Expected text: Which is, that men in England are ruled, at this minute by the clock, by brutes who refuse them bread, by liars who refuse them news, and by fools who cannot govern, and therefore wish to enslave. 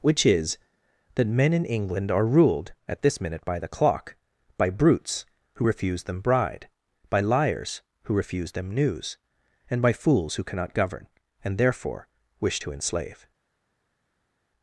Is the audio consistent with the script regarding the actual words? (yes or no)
no